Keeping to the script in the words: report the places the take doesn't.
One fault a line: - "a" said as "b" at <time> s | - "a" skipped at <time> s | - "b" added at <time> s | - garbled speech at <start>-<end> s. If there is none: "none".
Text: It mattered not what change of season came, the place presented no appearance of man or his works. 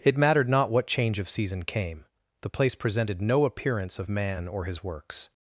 none